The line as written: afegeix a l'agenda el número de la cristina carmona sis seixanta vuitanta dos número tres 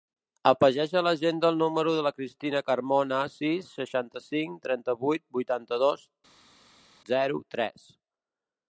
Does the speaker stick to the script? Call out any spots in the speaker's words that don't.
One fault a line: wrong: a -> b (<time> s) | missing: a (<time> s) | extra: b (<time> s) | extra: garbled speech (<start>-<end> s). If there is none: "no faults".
extra: cinc trenta vuit (4.3 s)
wrong: número -> zero (7.2 s)